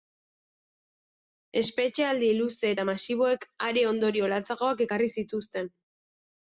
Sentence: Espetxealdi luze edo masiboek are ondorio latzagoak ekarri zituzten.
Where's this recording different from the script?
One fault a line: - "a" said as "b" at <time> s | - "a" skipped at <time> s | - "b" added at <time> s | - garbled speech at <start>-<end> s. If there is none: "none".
- "edo" said as "eta" at 2.7 s